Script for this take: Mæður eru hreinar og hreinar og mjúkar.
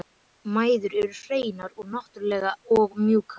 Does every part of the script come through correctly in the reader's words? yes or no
no